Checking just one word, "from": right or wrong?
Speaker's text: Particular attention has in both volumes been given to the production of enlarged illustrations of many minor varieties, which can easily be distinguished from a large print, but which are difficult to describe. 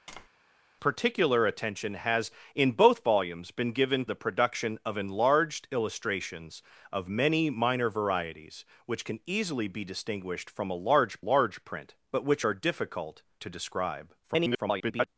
right